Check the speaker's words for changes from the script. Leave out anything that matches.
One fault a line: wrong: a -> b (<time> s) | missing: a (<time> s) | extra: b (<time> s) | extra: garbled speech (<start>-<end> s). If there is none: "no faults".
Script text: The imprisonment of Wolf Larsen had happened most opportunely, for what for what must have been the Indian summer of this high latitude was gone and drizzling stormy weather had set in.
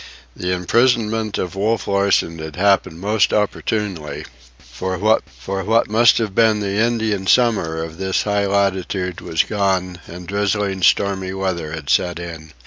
no faults